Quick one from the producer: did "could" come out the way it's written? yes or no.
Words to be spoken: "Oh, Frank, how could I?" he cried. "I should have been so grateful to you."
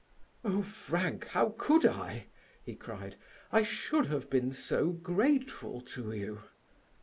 yes